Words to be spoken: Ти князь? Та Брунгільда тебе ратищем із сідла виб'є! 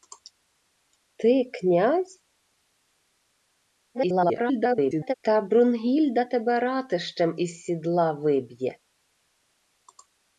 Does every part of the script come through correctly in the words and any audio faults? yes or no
no